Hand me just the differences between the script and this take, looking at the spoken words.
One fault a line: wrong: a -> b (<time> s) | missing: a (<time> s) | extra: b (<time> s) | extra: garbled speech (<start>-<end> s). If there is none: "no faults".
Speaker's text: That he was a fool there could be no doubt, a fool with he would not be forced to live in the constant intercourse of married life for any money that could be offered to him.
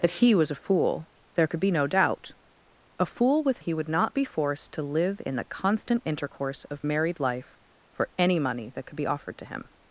no faults